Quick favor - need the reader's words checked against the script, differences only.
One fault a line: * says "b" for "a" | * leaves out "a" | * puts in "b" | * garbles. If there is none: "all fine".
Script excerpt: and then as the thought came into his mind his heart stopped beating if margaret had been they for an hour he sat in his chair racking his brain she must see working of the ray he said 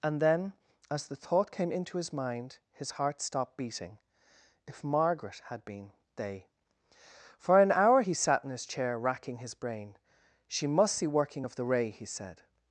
all fine